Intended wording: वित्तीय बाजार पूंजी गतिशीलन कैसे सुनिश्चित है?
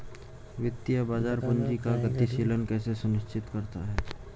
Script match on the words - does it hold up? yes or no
no